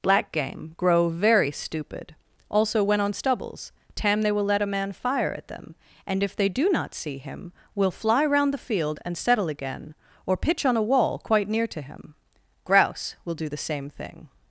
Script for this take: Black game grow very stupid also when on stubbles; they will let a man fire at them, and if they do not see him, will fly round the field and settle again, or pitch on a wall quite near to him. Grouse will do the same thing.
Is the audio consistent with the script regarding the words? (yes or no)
no